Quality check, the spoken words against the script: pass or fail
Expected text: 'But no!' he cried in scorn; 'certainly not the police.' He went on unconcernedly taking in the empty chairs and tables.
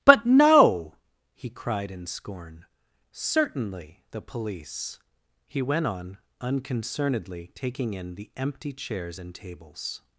fail